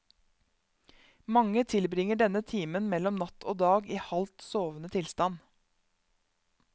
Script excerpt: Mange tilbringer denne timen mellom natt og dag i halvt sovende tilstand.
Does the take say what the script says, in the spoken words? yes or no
yes